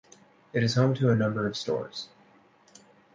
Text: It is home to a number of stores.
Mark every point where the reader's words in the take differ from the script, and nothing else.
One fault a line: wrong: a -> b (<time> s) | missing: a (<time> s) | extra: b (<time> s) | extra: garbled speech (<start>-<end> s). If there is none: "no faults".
no faults